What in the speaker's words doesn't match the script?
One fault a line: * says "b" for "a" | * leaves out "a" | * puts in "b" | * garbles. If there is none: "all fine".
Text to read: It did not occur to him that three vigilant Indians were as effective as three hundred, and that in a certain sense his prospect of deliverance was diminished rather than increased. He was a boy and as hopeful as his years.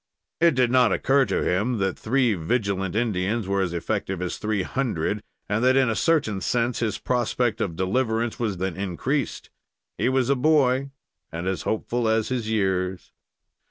* leaves out "diminished rather"